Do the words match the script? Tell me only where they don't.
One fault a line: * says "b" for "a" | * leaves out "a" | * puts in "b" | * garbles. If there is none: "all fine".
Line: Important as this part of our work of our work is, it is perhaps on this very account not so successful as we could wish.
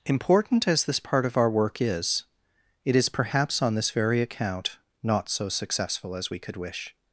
* leaves out "of our work"